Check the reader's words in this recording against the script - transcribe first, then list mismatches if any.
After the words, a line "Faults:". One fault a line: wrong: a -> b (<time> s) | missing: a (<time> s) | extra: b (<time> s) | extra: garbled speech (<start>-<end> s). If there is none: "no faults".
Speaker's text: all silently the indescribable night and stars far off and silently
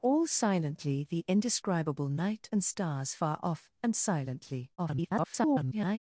all silently the indescribable night and stars far off and silently [garbled]
Faults:
extra: garbled speech (4.8-6.0 s)